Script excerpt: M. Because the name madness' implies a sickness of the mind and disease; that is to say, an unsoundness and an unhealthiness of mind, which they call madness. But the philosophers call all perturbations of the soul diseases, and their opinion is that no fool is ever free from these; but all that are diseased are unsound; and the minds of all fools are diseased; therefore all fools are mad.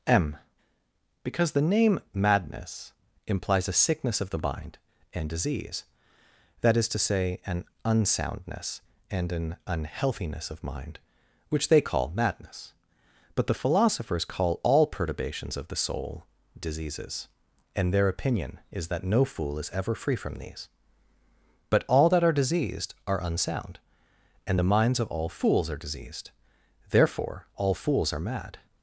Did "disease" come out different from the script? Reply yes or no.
no